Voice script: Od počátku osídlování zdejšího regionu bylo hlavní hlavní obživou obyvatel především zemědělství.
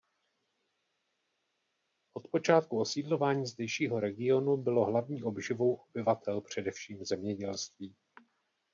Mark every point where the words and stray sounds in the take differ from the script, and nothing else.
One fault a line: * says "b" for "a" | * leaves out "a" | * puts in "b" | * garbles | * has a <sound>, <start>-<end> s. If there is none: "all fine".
* leaves out "hlavní"